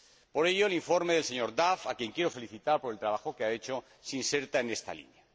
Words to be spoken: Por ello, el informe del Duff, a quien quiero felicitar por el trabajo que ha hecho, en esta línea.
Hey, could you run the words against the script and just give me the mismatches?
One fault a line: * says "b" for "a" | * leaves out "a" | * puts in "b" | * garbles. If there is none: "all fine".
* puts in "señor"
* puts in "se inserta"